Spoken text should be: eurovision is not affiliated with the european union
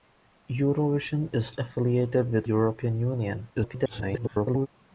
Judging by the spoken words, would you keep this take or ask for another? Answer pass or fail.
fail